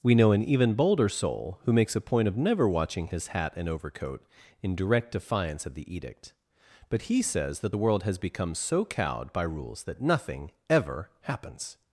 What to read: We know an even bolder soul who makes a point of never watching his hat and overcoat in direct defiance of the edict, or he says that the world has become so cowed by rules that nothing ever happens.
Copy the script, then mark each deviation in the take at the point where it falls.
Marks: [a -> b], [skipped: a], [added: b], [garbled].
We know an even bolder soul who makes a point of never watching his hat and overcoat in direct defiance of the edict, [or -> but] he says that the world has become so cowed by rules that nothing ever happens.